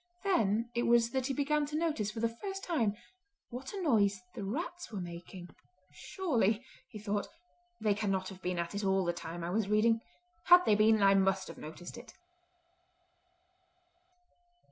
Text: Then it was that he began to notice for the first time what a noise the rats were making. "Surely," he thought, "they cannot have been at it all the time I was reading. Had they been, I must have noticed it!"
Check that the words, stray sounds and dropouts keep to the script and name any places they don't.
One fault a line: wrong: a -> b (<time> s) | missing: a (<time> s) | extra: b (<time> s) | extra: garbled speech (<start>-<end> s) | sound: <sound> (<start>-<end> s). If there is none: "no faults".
no faults